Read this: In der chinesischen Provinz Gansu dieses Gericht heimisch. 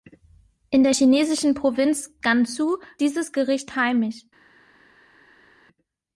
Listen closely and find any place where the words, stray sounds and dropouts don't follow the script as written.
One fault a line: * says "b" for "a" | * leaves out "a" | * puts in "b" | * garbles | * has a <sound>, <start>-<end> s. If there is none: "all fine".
all fine